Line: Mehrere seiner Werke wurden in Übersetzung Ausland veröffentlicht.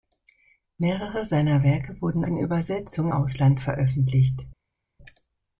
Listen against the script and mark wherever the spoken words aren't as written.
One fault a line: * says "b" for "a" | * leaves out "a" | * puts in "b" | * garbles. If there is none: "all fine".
all fine